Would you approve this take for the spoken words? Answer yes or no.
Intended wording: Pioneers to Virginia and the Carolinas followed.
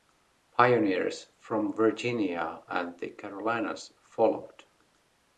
no